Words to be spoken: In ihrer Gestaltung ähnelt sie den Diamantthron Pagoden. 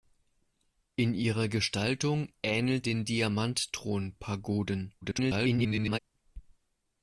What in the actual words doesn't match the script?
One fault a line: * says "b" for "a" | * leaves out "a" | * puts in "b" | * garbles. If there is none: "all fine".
* leaves out "sie"
* garbles